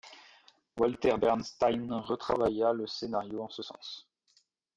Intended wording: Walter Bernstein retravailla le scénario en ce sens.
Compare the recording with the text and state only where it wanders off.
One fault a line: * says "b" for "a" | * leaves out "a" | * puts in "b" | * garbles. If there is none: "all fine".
all fine